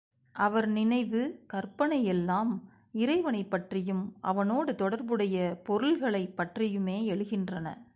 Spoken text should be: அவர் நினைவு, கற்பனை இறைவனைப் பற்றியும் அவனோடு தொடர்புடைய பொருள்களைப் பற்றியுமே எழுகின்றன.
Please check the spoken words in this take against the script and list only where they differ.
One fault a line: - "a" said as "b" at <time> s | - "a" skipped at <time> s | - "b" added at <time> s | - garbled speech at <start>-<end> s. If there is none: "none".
- "எல்லாம்" added at 2.0 s